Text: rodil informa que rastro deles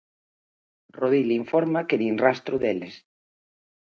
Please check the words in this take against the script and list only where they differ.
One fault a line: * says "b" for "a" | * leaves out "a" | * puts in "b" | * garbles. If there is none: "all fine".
* puts in "nin"